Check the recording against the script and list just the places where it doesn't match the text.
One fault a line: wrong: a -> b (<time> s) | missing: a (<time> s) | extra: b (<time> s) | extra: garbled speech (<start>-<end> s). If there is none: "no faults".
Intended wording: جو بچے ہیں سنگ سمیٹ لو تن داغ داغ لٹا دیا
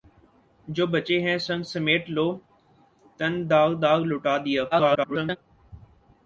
extra: garbled speech (4.7-5.4 s)